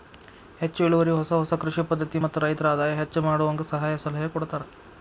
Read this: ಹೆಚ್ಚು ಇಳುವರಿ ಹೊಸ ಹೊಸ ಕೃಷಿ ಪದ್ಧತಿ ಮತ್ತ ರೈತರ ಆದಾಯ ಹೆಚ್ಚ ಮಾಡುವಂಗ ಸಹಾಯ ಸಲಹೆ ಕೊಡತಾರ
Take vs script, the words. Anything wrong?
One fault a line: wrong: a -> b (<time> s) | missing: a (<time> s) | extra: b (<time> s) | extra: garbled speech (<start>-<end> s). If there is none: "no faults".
no faults